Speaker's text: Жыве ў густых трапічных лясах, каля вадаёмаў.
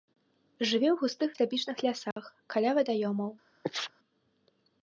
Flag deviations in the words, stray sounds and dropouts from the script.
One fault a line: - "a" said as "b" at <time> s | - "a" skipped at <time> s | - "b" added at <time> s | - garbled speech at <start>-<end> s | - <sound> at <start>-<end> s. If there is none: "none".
- dropout at 2.1-2.2 s
- sneeze at 3.6-3.9 s